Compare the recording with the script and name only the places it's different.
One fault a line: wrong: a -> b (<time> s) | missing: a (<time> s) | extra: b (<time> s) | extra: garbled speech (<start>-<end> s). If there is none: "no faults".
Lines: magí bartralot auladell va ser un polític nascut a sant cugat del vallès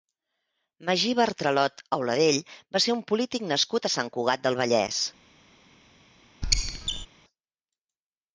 no faults